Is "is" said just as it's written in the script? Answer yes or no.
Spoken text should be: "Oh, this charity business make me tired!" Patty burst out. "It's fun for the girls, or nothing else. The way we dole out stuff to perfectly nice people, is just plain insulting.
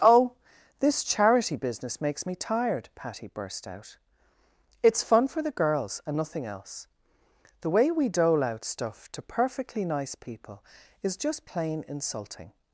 yes